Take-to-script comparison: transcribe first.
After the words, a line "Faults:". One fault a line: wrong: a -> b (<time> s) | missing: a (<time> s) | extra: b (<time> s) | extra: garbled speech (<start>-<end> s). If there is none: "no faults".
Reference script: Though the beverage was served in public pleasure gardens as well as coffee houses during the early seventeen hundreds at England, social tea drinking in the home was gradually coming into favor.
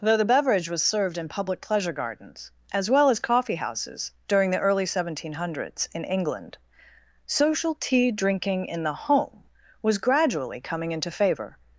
Though the beverage was served in public pleasure gardens as well as coffee houses during the early seventeen hundreds in England, social tea drinking in the home was gradually coming into favor.
Faults:
wrong: at -> in (5.9 s)